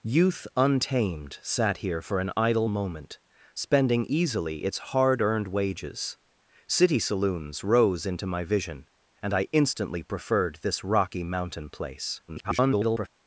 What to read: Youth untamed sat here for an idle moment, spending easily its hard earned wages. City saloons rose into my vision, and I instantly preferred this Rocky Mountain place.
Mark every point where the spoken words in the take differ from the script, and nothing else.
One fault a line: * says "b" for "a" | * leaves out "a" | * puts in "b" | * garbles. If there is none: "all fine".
* garbles